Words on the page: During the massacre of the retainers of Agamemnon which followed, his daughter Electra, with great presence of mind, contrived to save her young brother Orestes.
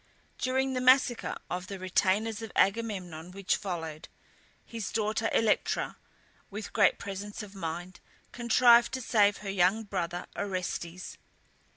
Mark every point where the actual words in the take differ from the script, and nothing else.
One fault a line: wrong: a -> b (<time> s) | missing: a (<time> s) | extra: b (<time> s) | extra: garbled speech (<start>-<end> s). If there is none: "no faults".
no faults